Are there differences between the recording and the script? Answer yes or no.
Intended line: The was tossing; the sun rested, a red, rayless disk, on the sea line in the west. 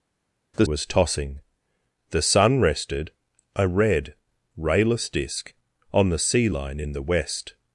no